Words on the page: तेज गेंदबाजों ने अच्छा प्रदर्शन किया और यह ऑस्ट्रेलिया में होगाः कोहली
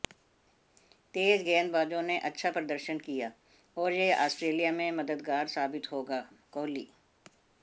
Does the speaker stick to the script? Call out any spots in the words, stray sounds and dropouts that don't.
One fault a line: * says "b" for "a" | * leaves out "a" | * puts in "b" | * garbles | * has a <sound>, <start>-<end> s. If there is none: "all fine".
* puts in "मददगार साबित"